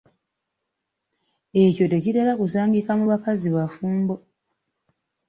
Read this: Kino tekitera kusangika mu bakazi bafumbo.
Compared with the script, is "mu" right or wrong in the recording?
right